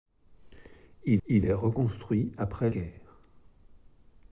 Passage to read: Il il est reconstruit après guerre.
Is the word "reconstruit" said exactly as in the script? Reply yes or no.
yes